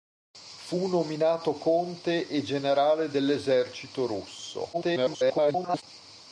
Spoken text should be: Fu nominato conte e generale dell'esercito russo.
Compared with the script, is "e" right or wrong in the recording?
right